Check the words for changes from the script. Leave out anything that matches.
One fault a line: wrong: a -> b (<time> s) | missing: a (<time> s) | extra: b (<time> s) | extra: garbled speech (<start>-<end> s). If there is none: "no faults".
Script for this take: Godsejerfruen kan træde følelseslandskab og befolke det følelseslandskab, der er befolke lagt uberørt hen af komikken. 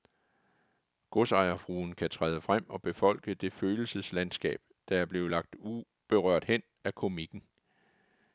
wrong: følelseslandskab -> frem (2.4 s)
wrong: befolke -> blevet (5.1 s)